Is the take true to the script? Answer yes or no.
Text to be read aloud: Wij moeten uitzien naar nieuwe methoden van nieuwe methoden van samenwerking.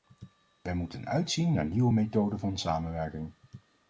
no